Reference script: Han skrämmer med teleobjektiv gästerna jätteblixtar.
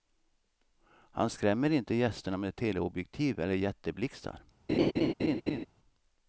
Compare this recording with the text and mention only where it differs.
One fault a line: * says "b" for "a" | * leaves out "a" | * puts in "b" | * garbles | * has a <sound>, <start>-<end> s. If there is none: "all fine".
* puts in "inte gästerna"
* says "eller" for "gästerna"
* has a laugh, 4.7-5.7 s